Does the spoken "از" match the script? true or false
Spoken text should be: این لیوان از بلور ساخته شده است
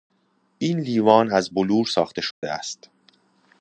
true